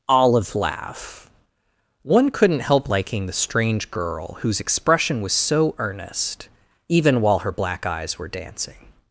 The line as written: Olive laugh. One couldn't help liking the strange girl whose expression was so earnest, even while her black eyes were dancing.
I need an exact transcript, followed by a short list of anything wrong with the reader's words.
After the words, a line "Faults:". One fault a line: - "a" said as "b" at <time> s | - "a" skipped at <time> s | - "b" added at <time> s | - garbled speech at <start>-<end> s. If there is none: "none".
Olive laugh. One couldn't help liking the strange girl whose expression was so earnest, even while her black eyes were dancing.
Faults:
none